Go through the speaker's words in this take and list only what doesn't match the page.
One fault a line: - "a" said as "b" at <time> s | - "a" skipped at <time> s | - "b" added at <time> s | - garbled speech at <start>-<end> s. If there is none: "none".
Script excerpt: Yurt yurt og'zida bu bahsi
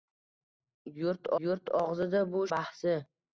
none